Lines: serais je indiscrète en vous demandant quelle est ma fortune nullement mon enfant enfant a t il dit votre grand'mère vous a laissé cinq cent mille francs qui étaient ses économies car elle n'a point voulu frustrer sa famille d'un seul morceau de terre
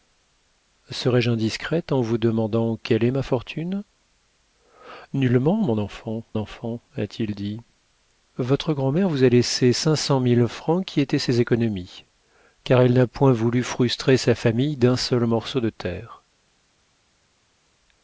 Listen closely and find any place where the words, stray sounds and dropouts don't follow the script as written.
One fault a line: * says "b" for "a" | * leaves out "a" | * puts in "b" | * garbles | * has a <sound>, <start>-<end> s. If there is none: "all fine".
all fine